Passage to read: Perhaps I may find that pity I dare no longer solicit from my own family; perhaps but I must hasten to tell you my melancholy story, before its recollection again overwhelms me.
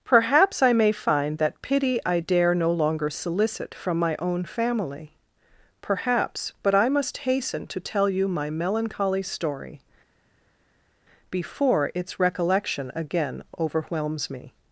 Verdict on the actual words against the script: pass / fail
pass